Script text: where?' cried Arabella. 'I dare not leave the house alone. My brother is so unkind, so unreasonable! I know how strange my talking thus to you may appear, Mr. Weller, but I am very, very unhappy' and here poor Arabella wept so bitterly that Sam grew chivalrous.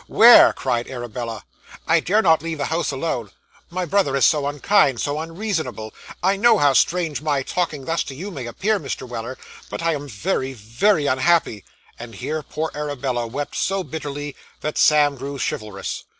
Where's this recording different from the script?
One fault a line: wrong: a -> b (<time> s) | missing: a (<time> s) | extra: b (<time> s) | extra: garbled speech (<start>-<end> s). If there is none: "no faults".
no faults